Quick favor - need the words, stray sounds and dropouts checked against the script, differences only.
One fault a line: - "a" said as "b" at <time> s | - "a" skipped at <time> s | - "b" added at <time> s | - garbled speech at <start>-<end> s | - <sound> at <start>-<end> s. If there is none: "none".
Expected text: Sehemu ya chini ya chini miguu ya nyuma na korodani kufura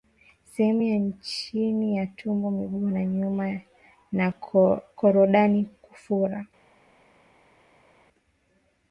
- "chini" said as "tumbo" at 2.1 s